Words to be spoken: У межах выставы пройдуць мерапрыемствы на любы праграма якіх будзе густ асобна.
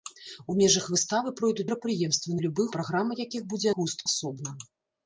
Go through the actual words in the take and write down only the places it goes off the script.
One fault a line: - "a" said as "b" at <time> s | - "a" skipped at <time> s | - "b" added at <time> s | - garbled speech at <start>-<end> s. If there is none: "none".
none